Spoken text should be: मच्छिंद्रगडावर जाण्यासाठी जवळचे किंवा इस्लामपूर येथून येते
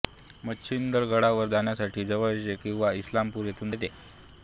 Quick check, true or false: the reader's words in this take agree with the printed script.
true